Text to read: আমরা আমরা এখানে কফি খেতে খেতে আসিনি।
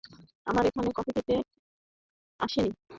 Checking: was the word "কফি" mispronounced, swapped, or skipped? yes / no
no